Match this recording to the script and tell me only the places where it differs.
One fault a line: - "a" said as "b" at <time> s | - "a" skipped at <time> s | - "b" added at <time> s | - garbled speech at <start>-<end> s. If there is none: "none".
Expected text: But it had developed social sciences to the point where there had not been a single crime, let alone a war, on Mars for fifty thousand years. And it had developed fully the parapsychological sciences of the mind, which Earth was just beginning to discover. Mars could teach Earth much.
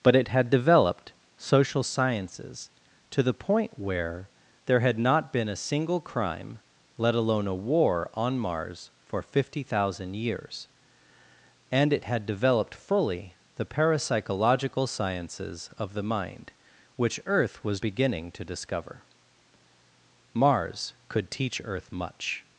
- "just" skipped at 17.8 s